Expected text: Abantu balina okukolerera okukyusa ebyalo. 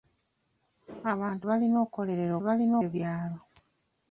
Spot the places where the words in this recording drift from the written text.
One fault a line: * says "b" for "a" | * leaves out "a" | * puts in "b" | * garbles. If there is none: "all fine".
* says "balina" for "okukyusa"